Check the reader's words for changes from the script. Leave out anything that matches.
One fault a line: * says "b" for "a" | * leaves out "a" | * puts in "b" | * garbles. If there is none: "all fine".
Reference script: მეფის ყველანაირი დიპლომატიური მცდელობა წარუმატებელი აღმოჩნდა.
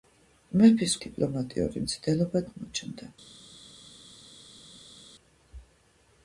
* leaves out "ყველანაირი"
* leaves out "წარუმატებელი"